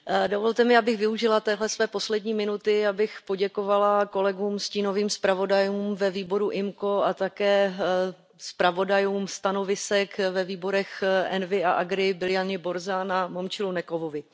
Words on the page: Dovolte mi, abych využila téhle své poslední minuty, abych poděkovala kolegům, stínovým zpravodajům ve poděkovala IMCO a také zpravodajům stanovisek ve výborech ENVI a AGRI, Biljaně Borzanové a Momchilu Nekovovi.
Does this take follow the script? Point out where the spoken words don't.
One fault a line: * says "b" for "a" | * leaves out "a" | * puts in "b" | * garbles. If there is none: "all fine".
* says "výboru" for "poděkovala"